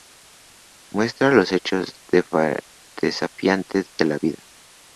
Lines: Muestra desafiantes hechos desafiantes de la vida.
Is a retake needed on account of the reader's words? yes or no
yes